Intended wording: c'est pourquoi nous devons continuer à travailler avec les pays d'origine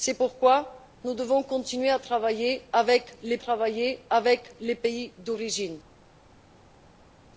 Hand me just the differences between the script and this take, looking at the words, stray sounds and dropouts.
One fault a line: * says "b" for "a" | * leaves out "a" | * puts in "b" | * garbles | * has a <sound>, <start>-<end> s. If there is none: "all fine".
* puts in "travailler avec les"